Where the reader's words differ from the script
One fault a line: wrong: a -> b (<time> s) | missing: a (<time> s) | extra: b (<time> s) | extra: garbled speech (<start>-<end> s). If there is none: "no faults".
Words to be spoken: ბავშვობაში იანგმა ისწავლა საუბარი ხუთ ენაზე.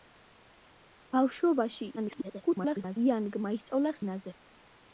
extra: garbled speech (2.0-3.0 s)
missing: საუბარი ხუთ (4.0 s)